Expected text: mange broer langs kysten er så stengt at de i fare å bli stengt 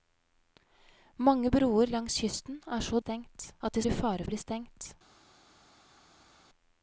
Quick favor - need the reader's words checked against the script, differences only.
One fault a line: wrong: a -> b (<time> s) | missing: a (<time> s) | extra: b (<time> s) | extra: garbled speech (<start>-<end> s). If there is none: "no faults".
no faults